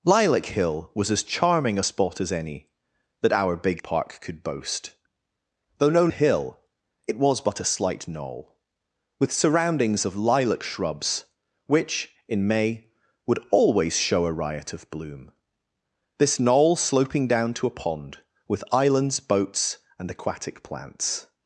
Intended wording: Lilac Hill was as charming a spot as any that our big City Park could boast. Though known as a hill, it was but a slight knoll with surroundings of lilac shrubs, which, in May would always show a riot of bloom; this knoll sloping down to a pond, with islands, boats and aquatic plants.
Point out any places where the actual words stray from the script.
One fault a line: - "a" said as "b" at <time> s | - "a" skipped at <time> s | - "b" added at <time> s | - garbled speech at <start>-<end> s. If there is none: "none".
- "City" skipped at 3.8 s
- "as" skipped at 6.1 s